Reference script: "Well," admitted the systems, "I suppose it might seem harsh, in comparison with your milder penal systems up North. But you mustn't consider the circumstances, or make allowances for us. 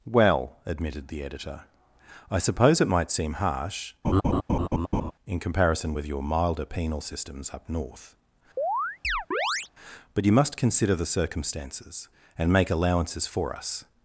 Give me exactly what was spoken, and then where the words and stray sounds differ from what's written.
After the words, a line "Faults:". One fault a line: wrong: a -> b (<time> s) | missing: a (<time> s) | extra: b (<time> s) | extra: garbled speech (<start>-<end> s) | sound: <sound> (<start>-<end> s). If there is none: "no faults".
"Well," admitted the editor, "I suppose it might seem harsh, in comparison with your milder penal systems up North. But you must consider the circumstances, and make allowances for us.
Faults:
wrong: systems -> editor (1.2 s)
sound: laugh (4.0-5.1 s)
sound: chirp (8.6-9.7 s)
wrong: mustn't -> must (10.3 s)
wrong: or -> and (12.4 s)